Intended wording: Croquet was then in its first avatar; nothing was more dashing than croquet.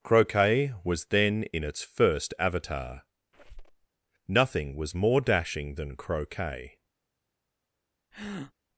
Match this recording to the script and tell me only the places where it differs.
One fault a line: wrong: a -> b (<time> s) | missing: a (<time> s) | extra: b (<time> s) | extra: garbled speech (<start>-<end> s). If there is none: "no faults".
no faults